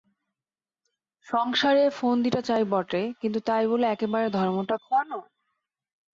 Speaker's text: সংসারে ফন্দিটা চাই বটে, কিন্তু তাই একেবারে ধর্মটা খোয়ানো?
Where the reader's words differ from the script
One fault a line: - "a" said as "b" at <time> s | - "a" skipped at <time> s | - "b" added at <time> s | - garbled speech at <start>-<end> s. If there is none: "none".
- "বলে" added at 3.7 s